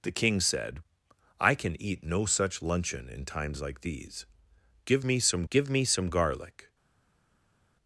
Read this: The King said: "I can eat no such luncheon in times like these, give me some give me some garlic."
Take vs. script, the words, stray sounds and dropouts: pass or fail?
pass